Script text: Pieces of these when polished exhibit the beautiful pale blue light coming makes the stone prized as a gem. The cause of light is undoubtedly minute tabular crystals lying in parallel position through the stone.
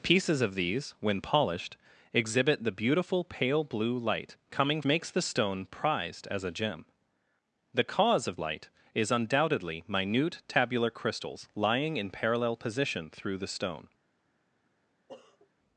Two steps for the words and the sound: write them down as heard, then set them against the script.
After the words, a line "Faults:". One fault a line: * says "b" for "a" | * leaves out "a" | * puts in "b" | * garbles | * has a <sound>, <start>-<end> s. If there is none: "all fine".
Pieces of these when polished exhibit the beautiful pale blue light coming makes the stone prized as a gem. The cause of light is undoubtedly minute tabular crystals lying in parallel position through the stone.
Faults:
* has a sniff, 15.1-15.5 s